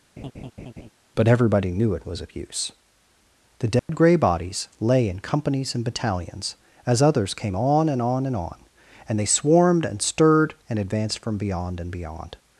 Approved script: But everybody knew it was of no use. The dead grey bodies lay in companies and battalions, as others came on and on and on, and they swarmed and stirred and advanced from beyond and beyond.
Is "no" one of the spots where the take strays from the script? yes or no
yes